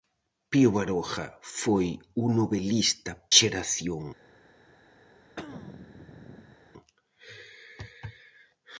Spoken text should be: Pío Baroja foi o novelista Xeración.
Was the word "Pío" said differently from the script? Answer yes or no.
no